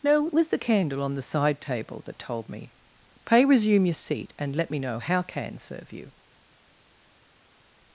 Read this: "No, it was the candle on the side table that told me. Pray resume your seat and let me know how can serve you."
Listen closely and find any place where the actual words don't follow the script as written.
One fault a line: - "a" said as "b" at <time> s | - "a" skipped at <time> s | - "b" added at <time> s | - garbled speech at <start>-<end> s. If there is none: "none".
none